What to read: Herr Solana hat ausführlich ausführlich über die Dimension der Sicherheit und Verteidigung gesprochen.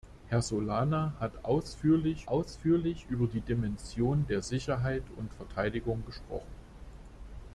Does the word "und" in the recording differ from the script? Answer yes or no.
no